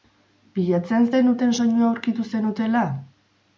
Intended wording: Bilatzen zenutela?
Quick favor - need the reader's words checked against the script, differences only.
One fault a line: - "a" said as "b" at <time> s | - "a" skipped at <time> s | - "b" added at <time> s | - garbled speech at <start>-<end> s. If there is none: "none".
- "zenuten soinua aurkitu" added at 1.2 s